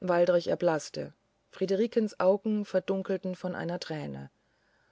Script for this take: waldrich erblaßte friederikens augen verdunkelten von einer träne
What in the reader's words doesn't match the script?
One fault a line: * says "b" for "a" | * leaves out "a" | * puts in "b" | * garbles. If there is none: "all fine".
all fine